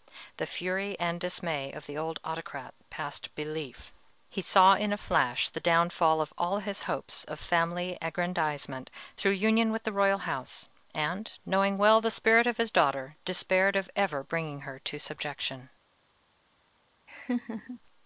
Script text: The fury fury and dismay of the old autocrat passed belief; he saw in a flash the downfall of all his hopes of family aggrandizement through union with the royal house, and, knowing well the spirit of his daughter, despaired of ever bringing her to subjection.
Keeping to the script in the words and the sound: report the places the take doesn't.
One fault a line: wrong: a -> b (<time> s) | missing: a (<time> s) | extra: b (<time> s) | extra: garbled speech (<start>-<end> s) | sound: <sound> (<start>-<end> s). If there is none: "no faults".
missing: fury (1.0 s)
sound: laugh (17.1-17.8 s)